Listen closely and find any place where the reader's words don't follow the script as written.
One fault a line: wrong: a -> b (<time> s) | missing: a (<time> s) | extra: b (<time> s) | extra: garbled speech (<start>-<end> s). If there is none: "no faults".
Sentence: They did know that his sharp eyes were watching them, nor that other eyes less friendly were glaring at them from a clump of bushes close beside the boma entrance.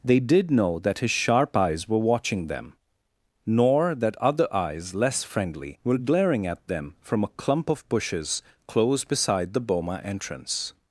no faults